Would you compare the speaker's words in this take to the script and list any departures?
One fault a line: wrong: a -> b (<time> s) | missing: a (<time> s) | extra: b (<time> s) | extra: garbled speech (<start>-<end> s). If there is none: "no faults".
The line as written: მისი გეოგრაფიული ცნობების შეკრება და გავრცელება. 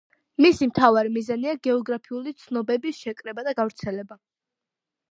extra: მთავარი მიზანია (0.7 s)